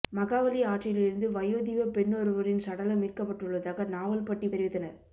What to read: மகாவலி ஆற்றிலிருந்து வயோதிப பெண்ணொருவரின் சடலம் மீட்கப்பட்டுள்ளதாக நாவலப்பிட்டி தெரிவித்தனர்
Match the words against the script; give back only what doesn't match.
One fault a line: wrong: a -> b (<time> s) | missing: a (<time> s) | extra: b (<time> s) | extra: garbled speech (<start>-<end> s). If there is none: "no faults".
no faults